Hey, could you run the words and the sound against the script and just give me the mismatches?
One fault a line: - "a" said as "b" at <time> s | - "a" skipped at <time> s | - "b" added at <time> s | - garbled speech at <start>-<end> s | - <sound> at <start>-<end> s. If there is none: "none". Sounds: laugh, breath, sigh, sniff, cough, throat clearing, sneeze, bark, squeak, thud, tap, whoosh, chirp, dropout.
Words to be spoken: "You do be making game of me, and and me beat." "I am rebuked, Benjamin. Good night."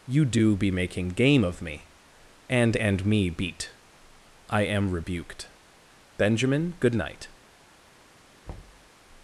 - thud at 8.5-8.9 s